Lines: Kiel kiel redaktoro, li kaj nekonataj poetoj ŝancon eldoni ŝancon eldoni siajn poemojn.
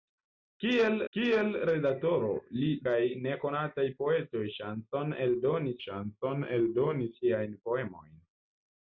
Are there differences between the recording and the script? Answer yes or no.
no